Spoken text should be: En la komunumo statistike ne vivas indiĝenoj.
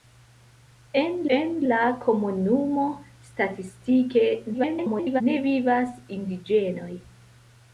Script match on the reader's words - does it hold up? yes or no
no